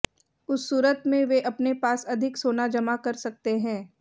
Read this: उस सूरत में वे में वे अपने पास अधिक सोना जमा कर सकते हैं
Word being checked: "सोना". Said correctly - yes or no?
yes